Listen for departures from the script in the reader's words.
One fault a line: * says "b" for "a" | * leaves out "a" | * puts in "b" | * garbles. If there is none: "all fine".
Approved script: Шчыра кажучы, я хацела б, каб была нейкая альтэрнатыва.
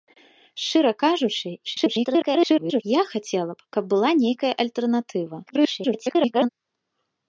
* garbles
* garbles